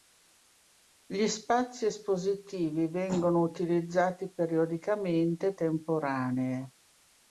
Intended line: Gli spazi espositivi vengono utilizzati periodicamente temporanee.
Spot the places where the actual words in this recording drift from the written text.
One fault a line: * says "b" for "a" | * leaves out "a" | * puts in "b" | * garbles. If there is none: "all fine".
all fine